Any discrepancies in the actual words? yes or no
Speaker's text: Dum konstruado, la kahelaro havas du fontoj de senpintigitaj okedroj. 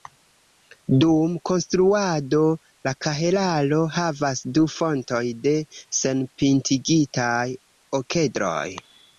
no